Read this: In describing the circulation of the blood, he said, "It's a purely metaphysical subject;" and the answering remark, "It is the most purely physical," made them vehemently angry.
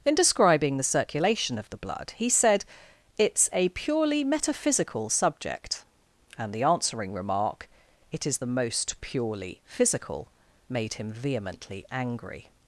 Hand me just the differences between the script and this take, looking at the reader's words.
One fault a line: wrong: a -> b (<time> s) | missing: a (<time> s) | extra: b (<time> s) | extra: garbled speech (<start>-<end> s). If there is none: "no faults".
wrong: them -> him (10.9 s)